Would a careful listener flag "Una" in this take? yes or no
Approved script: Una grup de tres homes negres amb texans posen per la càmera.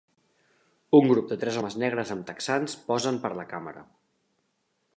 yes